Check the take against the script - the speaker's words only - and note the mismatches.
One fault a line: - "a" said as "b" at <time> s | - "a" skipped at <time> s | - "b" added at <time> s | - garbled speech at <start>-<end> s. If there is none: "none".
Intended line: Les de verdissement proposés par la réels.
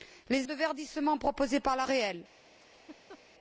none